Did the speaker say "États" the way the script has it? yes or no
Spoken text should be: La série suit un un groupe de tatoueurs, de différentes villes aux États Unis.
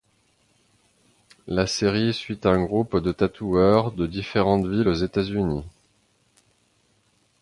yes